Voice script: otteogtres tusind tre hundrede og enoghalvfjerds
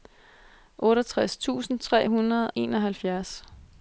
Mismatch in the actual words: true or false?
true